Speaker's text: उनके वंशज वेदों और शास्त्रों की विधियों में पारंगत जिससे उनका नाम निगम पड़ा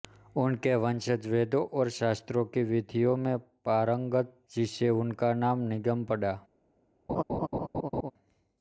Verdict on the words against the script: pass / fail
pass